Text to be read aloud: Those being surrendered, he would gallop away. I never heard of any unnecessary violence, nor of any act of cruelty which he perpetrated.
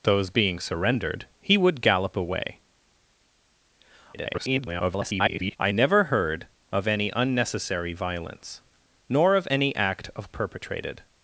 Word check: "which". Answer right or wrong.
wrong